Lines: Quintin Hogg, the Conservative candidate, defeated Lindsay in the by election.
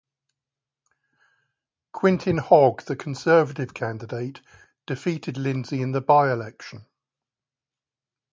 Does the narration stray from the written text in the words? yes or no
no